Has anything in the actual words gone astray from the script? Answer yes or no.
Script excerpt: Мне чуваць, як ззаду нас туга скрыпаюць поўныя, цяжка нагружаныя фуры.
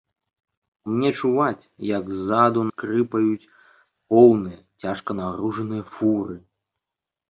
yes